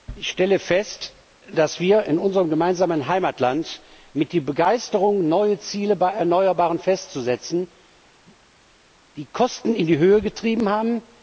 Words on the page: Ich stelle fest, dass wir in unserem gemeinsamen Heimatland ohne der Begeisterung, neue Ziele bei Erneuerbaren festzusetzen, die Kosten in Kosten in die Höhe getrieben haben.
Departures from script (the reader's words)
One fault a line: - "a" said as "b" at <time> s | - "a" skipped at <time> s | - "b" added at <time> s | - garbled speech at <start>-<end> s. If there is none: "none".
- "ohne" said as "mit" at 4.1 s
- "Kosten in" skipped at 9.9 s